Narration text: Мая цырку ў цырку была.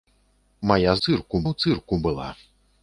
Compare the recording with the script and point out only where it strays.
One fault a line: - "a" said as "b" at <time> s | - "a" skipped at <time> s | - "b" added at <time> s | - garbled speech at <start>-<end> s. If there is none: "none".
none